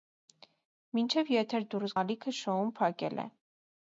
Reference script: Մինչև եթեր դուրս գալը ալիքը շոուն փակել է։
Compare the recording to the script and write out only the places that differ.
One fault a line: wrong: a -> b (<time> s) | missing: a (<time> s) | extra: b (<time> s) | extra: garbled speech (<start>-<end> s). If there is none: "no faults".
missing: գալը (1.9 s)